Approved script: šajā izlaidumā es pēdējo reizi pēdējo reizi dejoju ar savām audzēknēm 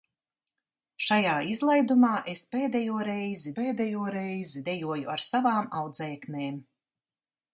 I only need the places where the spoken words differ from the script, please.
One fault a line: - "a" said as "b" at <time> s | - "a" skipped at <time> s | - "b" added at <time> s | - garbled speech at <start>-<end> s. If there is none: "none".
none